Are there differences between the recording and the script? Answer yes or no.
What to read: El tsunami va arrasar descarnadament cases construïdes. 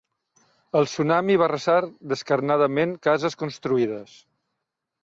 no